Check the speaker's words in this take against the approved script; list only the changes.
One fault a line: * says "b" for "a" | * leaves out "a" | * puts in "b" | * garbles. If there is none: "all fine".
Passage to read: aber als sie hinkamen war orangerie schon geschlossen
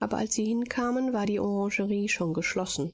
* puts in "die"